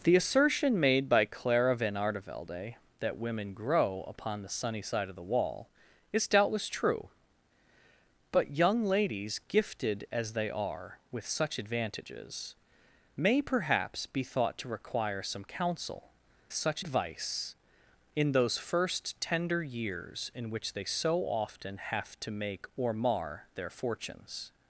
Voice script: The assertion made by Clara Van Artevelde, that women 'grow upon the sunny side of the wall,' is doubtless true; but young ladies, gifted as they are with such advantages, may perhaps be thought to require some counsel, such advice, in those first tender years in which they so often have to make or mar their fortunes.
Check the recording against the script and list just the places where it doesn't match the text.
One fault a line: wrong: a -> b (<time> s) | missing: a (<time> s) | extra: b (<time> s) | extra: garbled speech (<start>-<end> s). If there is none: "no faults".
no faults